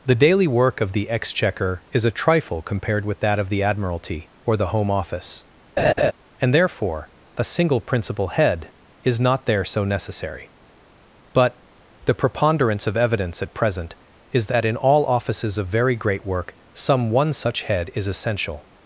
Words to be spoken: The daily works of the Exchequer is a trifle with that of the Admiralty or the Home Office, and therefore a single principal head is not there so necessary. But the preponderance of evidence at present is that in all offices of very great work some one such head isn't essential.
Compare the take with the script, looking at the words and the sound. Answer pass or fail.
fail